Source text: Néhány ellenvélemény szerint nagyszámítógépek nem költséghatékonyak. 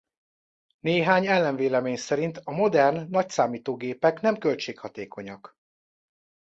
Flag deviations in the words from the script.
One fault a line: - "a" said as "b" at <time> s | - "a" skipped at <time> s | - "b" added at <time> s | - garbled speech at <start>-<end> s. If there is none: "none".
- "a modern" added at 2.4 s